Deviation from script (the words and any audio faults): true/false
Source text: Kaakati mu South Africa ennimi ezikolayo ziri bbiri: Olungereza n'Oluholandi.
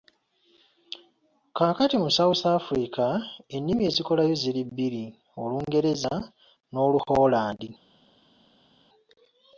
false